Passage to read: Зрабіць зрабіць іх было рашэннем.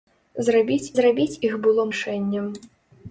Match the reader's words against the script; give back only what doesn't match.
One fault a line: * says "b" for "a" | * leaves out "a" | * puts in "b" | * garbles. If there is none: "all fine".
all fine